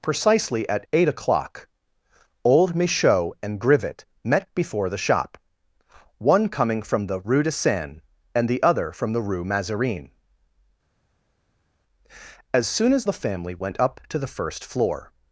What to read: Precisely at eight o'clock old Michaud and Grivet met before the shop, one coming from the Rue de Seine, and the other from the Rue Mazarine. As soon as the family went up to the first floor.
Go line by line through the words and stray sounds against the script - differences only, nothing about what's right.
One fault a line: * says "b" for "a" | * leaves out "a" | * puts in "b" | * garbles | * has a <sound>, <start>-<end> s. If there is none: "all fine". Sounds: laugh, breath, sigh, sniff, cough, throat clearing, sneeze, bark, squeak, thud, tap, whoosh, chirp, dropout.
all fine